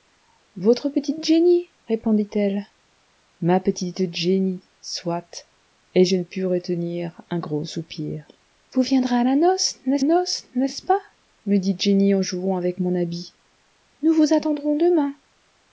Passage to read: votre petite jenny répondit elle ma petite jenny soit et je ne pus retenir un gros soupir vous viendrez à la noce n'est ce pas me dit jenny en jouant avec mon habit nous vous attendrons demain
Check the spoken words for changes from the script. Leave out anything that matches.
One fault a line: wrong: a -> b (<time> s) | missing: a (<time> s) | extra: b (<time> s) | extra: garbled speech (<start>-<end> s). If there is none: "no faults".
extra: noce n'est (10.0 s)